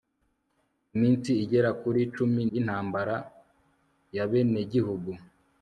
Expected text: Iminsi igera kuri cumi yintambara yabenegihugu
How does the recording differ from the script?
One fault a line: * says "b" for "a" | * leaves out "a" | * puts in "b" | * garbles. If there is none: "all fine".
all fine